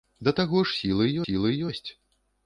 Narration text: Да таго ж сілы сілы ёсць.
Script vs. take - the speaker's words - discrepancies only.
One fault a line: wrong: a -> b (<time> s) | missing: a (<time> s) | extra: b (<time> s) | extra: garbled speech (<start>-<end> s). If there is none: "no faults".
no faults